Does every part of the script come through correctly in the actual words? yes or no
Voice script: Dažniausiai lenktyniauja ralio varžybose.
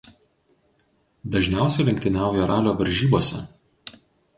yes